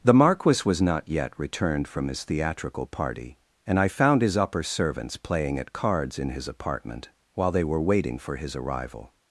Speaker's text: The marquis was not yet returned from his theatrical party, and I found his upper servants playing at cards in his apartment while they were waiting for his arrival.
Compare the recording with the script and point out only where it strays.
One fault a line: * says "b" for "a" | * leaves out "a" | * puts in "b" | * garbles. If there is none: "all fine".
all fine